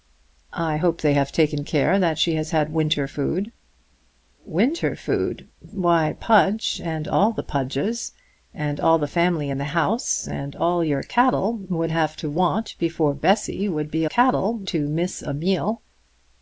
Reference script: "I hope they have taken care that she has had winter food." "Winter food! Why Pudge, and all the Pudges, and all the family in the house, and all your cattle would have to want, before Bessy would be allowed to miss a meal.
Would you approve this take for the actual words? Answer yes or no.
no